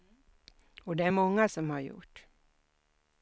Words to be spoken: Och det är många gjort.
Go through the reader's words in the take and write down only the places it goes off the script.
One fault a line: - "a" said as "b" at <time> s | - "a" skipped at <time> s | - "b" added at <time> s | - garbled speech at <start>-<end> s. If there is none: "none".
- "som har" added at 1.5 s